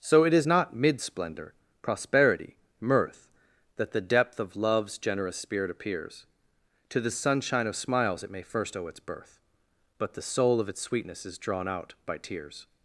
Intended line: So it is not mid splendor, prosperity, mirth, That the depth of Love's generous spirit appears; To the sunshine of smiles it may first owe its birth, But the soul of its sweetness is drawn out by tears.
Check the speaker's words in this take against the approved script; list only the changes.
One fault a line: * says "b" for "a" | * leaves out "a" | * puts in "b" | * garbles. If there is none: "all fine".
all fine